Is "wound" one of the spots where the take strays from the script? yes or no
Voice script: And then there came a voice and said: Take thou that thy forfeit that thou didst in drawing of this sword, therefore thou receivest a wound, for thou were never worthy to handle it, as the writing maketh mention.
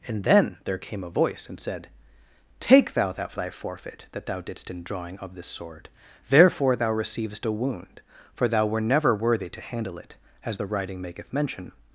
no